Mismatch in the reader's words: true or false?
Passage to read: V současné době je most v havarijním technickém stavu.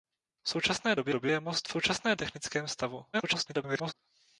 true